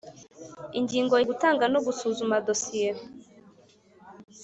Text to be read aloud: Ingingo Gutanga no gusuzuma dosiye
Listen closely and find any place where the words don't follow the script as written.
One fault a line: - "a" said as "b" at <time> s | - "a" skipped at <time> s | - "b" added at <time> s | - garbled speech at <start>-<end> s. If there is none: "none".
none